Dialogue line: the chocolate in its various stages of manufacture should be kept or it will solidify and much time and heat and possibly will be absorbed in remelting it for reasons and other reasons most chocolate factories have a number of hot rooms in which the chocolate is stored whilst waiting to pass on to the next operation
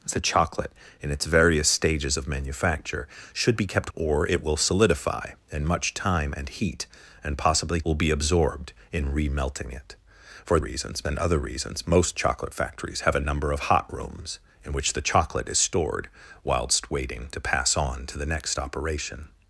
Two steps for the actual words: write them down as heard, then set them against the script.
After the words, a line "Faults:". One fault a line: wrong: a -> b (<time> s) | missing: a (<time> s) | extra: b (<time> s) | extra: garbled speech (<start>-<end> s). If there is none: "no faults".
the chocolate in its various stages of manufacture should be kept or it will solidify and much time and heat and possibly will be absorbed in remelting it for reasons and other reasons most chocolate factories have a number of hot rooms in which the chocolate is stored whilst waiting to pass on to the next operation
Faults:
no faults